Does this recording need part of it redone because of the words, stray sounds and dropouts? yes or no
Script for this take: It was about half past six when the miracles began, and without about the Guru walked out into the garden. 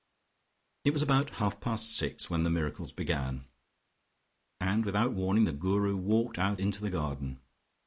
yes